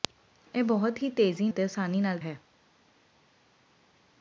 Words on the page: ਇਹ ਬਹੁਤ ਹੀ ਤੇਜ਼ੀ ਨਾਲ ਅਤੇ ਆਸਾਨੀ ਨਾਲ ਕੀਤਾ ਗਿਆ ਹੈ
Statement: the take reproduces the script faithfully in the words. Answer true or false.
false